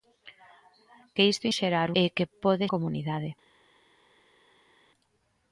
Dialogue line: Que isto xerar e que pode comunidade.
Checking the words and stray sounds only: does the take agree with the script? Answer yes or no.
yes